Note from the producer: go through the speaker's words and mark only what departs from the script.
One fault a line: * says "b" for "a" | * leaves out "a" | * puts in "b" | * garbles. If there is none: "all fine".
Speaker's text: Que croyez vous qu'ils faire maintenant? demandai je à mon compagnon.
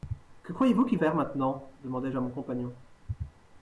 all fine